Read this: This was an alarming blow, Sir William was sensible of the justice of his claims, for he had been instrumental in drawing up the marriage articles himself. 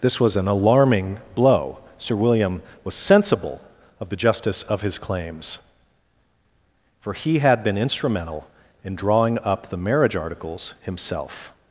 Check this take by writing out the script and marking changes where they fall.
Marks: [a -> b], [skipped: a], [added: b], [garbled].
This was an alarming blow, Sir William was sensible of the justice of his claims, for he had been instrumental in drawing up the marriage articles himself.